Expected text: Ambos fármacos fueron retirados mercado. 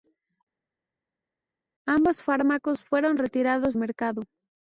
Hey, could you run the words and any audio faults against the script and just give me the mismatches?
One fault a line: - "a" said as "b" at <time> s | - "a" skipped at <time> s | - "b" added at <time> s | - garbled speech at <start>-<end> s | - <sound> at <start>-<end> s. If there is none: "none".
none